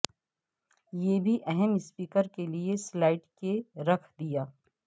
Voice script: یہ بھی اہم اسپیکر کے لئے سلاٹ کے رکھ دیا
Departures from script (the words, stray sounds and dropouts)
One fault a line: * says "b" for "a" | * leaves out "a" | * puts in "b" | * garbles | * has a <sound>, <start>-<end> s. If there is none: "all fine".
all fine